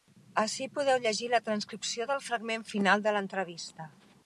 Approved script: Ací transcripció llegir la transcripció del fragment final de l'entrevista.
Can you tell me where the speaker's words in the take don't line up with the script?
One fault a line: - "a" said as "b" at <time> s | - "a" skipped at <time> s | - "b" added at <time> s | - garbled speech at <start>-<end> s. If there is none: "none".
- "transcripció" said as "podeu" at 0.8 s